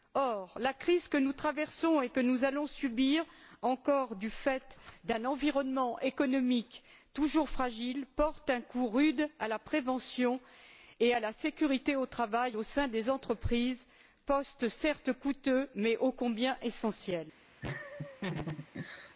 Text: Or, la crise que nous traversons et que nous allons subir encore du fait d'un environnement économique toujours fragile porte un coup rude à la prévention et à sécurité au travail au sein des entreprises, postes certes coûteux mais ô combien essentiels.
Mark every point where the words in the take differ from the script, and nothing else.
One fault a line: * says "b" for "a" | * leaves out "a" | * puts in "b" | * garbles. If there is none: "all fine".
* puts in "la"